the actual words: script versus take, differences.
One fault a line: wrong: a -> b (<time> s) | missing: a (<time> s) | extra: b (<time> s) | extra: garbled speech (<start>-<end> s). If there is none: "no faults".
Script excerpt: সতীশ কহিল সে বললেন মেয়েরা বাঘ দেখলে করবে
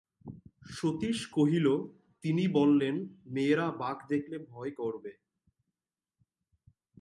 wrong: সে -> তিনি (2.2 s)
extra: ভয় (4.5 s)